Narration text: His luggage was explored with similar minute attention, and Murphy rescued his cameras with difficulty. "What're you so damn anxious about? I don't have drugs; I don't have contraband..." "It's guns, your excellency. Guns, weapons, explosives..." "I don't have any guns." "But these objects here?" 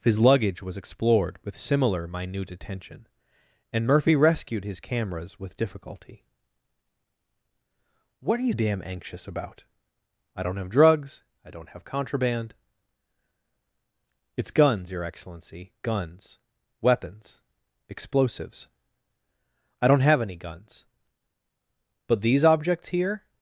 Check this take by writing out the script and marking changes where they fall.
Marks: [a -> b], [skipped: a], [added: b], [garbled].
His luggage was explored with similar minute attention, and Murphy rescued his cameras with difficulty. "What're you [skipped: so] damn anxious about? I don't have drugs; I don't have contraband..." "It's guns, your excellency. Guns, weapons, explosives..." "I don't have any guns." "But these objects here?"